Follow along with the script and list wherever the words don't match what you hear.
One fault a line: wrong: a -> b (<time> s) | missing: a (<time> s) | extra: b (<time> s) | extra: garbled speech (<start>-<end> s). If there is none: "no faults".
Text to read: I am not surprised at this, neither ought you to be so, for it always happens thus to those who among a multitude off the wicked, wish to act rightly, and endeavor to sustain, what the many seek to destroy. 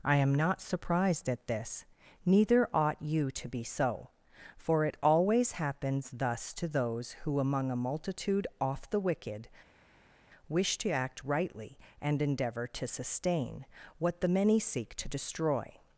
no faults